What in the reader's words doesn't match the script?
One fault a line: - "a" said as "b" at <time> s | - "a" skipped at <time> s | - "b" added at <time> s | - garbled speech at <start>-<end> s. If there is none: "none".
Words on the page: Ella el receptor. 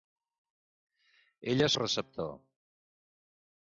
none